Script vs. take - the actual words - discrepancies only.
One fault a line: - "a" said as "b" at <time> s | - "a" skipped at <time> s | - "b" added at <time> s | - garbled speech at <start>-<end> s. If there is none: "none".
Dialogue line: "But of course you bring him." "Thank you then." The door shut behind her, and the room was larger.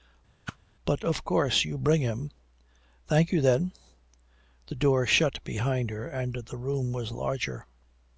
none